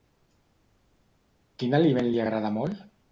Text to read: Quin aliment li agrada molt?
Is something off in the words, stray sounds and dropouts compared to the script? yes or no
no